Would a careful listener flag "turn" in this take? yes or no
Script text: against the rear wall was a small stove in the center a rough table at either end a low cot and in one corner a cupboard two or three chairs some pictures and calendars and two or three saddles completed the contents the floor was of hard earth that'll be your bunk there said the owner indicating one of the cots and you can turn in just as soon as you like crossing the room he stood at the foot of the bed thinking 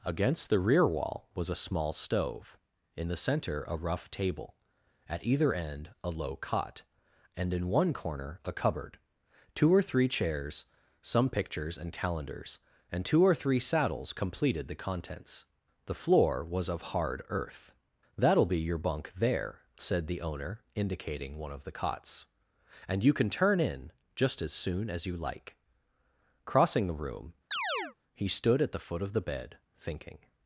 no